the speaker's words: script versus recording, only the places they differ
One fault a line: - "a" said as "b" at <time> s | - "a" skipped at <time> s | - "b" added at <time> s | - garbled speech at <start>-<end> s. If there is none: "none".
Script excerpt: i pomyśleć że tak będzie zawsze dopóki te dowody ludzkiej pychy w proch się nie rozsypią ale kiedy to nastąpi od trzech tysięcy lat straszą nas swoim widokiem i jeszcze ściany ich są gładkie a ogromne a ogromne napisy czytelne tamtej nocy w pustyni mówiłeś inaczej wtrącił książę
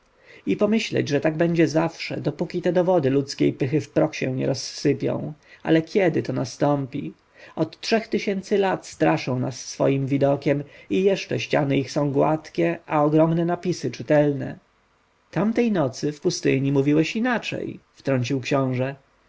- "a ogromne" skipped at 13.4 s